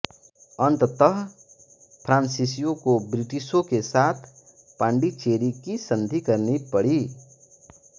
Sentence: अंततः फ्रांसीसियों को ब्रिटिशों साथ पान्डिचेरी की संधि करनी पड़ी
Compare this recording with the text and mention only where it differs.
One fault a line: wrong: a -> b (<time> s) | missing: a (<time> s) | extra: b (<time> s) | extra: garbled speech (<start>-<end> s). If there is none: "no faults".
extra: के (3.6 s)